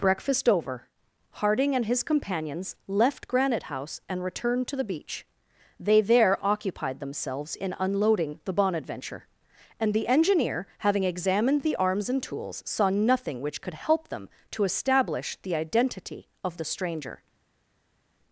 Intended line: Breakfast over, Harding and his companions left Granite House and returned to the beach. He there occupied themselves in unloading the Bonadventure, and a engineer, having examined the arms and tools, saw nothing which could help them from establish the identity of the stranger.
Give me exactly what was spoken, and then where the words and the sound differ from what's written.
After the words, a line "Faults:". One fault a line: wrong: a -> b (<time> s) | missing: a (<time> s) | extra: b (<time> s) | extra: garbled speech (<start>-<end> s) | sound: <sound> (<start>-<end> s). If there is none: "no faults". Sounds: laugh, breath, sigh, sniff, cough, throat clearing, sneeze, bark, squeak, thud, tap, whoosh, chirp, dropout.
Breakfast over, Harding and his companions left Granite House and returned to the beach. They there occupied themselves in unloading the Bonadventure, and the engineer, having examined the arms and tools, saw nothing which could help them to establish the identity of the stranger.
Faults:
wrong: He -> They (5.8 s)
wrong: a -> the (9.9 s)
wrong: from -> to (14.5 s)